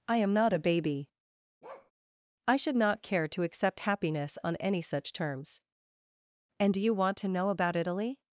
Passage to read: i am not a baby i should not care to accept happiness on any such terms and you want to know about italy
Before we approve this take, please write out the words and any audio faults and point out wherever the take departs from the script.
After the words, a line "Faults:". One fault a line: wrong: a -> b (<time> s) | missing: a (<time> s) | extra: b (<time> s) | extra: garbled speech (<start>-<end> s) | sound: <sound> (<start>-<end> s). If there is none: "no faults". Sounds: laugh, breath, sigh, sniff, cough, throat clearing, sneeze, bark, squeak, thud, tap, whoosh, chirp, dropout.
i am not a baby i should not care to accept happiness on any such terms and do you want to know about italy
Faults:
sound: bark (1.6-1.9 s)
extra: do (6.7 s)